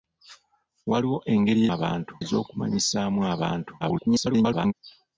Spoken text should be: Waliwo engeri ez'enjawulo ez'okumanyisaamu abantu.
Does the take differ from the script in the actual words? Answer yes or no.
yes